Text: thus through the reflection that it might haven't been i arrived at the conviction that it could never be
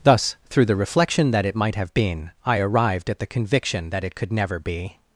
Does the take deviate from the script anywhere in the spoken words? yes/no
yes